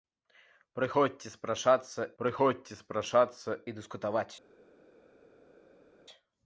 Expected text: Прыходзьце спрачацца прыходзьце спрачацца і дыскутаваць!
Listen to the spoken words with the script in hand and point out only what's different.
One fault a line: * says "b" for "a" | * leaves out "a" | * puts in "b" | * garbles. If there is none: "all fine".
all fine